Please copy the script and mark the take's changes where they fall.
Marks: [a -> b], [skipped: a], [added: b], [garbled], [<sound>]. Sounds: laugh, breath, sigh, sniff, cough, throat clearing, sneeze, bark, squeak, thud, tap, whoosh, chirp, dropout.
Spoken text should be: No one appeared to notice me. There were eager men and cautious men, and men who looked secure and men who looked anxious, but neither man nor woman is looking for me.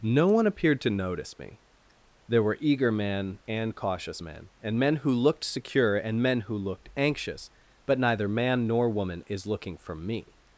No one appeared to notice me. There were eager men and cautious men, and men who looked secure and men who looked anxious, but neither man nor woman is looking for me.